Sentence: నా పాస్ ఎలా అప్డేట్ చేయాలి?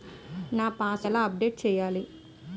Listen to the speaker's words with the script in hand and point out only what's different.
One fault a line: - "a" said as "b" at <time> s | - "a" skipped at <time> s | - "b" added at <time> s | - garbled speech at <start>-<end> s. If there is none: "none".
none